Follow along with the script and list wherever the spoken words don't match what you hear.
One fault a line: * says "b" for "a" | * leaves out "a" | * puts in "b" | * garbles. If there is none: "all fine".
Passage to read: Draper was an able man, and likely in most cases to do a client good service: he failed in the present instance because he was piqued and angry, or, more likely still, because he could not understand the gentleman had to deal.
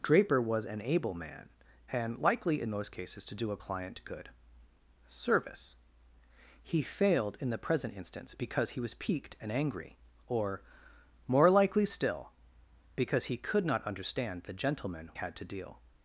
all fine